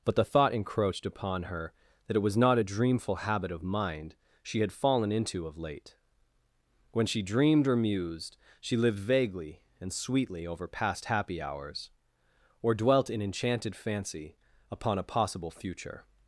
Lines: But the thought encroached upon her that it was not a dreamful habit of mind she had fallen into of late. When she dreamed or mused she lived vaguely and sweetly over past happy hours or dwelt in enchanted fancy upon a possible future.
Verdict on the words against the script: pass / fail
pass